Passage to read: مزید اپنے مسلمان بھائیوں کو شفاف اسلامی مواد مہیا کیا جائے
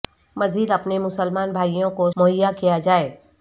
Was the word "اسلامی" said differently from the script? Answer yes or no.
yes